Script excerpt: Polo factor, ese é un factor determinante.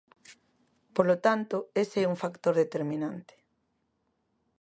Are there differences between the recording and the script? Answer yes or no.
yes